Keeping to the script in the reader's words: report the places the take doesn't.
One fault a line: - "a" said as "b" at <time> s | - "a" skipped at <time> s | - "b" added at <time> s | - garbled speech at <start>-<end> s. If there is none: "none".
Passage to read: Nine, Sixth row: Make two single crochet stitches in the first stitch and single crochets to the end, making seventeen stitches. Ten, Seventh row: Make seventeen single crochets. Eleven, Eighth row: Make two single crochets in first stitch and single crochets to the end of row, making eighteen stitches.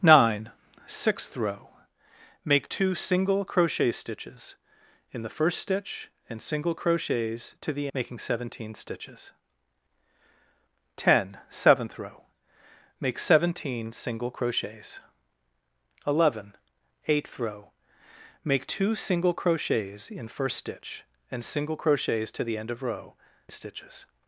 - "end" skipped at 7.9 s
- "making eighteen" skipped at 23.1 s